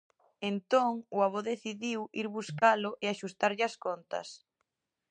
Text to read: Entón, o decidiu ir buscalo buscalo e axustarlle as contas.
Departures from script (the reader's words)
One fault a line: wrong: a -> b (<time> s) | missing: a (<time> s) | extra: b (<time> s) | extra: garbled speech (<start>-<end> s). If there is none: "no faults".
extra: avó (1.3 s)
missing: buscalo (2.9 s)